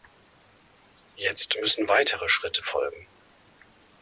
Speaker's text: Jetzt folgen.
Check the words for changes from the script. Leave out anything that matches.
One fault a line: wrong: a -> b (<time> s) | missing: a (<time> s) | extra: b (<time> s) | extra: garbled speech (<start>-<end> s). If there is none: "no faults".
extra: müssen weitere Schritte (1.6 s)